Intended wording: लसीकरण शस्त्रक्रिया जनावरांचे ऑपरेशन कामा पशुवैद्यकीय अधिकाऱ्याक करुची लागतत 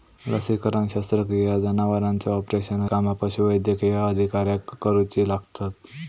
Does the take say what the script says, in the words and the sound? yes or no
yes